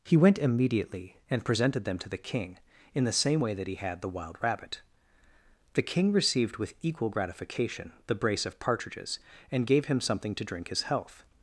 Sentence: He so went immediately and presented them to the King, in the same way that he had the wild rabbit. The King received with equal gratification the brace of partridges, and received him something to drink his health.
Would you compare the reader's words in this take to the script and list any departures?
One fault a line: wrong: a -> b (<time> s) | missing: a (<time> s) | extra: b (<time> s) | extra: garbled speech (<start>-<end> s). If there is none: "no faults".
missing: so (0.2 s)
wrong: received -> gave (9.7 s)